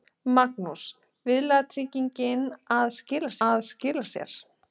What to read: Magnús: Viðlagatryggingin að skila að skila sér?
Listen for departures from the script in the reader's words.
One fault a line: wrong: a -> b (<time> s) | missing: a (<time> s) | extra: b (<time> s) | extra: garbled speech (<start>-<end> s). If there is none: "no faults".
no faults